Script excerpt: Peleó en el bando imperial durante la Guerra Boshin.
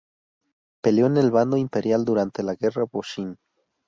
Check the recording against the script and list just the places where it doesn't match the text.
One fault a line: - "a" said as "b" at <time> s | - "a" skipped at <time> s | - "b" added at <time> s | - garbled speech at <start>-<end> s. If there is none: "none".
none